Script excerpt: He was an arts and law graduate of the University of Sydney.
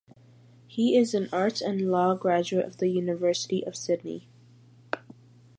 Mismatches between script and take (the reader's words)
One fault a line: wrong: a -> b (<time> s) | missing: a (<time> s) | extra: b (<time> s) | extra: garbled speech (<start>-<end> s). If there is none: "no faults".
wrong: was -> is (1.0 s)